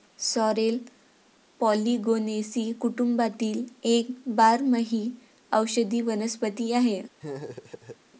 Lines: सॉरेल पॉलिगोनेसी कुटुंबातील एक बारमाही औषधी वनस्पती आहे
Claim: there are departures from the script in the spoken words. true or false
false